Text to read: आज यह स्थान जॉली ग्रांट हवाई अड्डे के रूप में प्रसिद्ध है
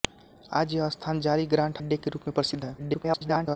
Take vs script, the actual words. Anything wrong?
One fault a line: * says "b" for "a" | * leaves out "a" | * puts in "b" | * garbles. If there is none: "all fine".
* leaves out "हवाई"
* garbles